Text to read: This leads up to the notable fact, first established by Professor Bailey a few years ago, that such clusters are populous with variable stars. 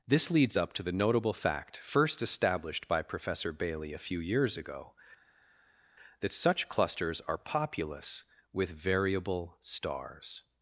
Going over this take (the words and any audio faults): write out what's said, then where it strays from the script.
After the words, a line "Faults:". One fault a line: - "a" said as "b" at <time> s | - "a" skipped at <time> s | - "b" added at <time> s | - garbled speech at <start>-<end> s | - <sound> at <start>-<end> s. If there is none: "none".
This leads up to the notable fact, first established by Professor Bailey a few years ago, that such clusters are populous with variable stars.
Faults:
none